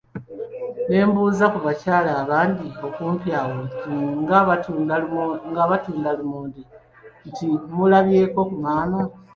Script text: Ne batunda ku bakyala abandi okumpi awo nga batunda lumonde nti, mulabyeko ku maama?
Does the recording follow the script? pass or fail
fail